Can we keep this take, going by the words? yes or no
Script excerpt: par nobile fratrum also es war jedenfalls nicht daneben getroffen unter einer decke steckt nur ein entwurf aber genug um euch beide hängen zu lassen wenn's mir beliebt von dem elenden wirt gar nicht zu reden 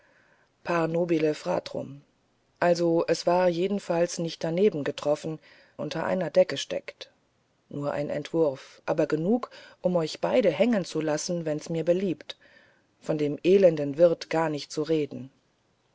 yes